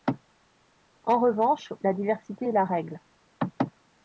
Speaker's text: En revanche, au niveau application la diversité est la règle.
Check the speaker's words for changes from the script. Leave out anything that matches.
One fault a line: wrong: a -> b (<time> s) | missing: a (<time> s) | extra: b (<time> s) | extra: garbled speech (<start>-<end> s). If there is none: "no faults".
missing: au niveau application (1.7 s)